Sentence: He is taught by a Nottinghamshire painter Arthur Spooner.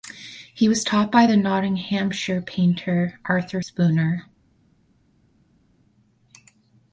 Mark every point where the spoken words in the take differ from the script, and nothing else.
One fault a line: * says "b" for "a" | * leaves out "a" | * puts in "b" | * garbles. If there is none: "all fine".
* says "was" for "is"
* says "the" for "a"